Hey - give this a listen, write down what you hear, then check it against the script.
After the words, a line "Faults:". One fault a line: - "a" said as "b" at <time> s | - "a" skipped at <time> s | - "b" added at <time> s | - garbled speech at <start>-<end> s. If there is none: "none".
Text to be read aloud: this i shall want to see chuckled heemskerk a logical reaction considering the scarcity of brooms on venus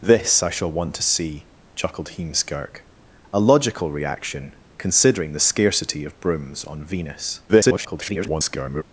this i shall want to see chuckled heemskerk a logical reaction considering the scarcity of brooms on venus [garbled]
Faults:
- garbled speech at 7.5-8.8 s